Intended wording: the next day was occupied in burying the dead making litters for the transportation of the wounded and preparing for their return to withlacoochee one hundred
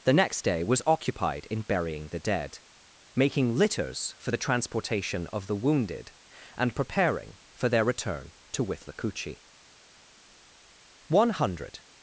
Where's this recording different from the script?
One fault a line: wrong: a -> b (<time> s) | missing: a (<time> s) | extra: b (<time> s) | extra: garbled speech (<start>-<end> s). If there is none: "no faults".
no faults